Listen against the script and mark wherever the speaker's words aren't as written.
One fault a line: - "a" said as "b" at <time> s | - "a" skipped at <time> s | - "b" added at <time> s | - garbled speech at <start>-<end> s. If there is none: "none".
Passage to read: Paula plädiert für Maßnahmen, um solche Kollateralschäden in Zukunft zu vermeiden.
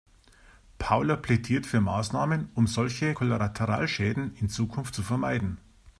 none